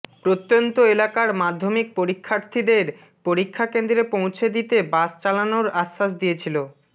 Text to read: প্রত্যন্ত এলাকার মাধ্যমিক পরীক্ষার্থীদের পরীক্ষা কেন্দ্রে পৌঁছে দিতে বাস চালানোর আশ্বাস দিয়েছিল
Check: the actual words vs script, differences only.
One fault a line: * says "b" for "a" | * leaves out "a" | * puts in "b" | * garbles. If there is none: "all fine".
all fine